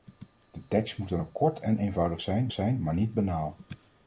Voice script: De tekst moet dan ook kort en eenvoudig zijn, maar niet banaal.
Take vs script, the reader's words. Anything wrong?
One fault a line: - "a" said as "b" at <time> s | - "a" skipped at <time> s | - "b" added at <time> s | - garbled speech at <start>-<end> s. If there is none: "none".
- "zijn" added at 2.5 s